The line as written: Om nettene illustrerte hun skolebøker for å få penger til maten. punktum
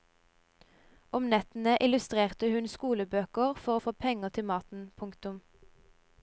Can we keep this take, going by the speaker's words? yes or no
yes